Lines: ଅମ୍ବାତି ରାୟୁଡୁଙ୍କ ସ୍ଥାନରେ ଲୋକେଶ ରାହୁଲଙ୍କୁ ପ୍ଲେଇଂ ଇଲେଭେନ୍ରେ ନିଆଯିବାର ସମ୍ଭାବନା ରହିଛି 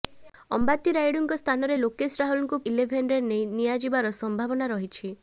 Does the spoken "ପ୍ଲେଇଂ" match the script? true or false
false